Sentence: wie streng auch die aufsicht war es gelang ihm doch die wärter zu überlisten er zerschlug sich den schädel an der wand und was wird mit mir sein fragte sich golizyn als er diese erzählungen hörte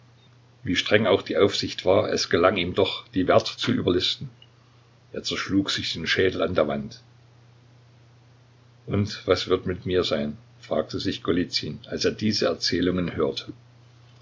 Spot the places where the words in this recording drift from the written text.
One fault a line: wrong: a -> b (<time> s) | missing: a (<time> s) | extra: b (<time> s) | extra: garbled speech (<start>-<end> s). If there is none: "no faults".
no faults